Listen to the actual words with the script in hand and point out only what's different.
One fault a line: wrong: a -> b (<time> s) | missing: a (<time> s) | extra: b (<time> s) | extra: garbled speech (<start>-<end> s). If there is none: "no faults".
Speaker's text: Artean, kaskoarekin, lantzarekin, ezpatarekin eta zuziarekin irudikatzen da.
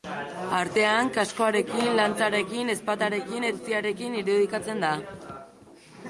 missing: eta (3.5 s)